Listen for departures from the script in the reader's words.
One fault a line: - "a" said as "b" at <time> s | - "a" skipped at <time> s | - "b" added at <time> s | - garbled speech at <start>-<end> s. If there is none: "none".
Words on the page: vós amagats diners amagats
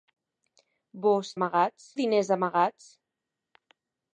none